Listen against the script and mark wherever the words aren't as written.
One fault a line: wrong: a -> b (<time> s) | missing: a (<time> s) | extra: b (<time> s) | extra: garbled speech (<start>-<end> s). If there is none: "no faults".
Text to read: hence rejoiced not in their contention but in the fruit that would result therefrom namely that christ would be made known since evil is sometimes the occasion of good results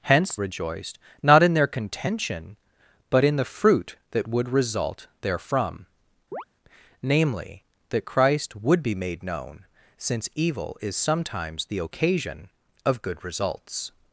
no faults